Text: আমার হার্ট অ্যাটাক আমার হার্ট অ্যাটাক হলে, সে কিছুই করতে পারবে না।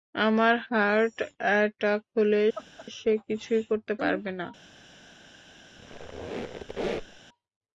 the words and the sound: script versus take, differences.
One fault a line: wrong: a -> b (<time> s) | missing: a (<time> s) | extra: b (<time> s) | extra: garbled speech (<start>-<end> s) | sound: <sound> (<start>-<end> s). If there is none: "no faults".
missing: আমার হার্ট অ্যাটাক (2.0 s)
sound: laugh (2.5-2.9 s)
sound: squeak (5.8-7.2 s)